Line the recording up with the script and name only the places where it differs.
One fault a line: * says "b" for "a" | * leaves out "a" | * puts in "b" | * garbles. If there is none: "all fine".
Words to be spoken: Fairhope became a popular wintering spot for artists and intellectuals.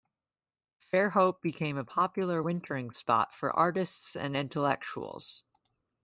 all fine